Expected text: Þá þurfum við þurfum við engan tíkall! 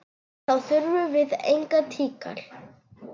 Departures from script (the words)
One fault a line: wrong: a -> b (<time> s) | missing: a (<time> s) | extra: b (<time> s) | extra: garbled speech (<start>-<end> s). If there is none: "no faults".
missing: þurfum við (1.3 s)